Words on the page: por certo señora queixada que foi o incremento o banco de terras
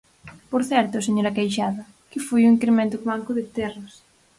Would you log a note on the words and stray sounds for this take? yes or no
no